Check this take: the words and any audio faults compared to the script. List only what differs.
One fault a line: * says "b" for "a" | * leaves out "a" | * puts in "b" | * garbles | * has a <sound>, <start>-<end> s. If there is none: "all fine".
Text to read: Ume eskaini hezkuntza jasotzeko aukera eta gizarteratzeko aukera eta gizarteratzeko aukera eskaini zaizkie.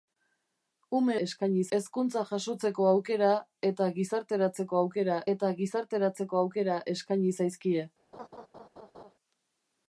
* has a laugh, 8.1-9.1 s